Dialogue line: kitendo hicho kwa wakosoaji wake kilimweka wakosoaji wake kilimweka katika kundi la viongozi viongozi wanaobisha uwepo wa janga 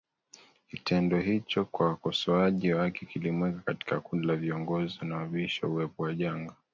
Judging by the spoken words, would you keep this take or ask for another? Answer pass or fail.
fail